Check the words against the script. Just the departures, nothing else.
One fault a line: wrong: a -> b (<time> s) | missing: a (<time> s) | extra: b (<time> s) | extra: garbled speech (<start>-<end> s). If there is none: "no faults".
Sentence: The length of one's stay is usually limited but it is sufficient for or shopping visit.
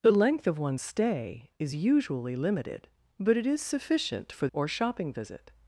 no faults